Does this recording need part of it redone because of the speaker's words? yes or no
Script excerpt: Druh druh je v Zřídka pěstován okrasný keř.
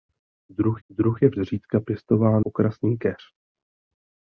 no